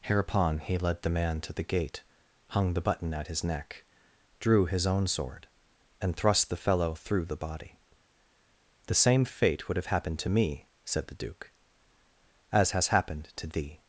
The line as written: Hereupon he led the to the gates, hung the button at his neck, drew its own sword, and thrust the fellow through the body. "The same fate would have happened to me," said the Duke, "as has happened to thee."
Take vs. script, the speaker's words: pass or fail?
fail